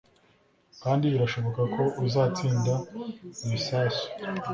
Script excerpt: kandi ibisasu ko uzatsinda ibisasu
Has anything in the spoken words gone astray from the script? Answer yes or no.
yes